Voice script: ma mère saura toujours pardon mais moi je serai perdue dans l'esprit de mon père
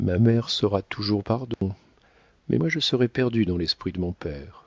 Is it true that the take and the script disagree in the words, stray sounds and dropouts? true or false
true